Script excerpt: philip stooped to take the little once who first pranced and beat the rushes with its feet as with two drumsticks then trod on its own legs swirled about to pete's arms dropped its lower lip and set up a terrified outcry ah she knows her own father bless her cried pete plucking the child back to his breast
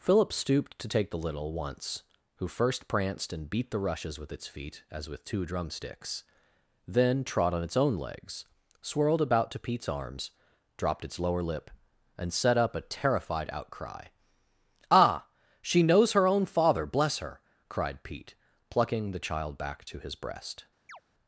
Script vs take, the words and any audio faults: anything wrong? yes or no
yes